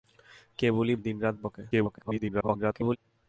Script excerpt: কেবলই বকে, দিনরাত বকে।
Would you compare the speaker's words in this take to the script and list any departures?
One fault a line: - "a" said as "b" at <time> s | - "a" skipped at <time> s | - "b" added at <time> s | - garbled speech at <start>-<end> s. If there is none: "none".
- "বকে" skipped at 0.9 s
- garbled speech at 1.7-3.0 s